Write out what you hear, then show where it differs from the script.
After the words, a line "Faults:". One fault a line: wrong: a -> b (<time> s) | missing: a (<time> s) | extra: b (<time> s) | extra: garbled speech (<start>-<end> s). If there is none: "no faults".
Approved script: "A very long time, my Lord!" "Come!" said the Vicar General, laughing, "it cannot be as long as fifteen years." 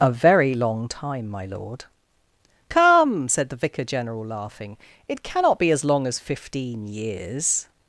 "A very long time, my Lord!" "Come!" said the Vicar General, laughing, "it cannot be as long as fifteen years."
Faults:
no faults